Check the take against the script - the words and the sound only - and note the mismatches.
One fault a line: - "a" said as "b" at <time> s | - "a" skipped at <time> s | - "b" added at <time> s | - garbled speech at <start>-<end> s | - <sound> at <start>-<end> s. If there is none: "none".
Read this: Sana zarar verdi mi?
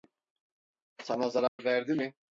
- dropout at 1.5-1.6 s